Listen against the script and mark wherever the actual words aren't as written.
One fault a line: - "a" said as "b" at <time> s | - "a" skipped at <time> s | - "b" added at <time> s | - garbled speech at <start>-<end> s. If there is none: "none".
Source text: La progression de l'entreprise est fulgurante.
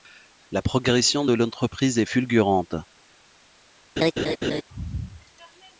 none